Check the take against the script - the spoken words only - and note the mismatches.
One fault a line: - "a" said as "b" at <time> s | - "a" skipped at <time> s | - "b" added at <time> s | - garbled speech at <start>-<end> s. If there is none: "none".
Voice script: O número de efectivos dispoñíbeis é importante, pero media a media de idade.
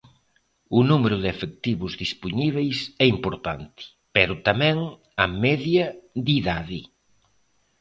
- "media" said as "tamén" at 4.5 s